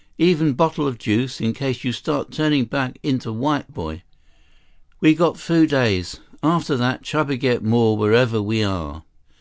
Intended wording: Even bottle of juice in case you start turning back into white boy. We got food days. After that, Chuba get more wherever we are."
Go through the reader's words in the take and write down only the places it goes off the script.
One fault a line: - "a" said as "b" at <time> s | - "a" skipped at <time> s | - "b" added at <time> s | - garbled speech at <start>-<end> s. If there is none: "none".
none